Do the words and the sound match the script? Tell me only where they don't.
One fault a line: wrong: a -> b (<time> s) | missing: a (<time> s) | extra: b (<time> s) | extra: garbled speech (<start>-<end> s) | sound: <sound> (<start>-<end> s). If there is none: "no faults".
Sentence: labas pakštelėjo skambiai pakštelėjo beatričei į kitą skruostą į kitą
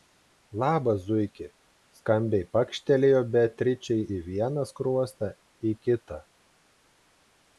wrong: pakštelėjo -> zuiki (1.1 s)
wrong: kitą -> vieną (4.3 s)